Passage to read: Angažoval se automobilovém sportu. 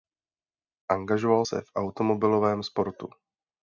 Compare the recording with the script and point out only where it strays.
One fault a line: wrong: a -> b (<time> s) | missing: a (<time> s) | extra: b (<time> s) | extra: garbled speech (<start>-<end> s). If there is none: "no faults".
extra: v (1.6 s)